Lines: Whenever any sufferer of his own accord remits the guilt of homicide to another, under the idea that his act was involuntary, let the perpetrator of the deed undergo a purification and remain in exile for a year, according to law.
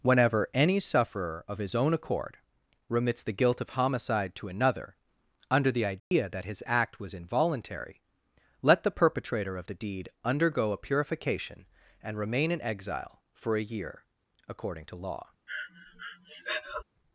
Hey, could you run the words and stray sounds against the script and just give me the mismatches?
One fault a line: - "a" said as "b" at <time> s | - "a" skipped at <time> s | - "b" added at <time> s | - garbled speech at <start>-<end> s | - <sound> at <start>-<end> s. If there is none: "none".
- dropout at 6.0-6.1 s
- breath at 15.5-16.8 s